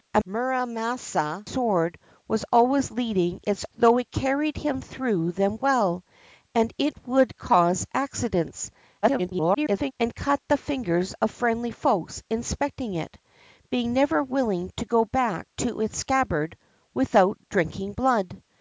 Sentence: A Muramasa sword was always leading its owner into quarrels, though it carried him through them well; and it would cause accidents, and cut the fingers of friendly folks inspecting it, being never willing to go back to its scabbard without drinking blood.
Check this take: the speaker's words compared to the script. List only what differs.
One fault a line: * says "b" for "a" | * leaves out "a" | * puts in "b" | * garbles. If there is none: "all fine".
* leaves out "owner into quarrels"
* garbles